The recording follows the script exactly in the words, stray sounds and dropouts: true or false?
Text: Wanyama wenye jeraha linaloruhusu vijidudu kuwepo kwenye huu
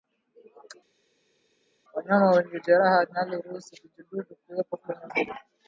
true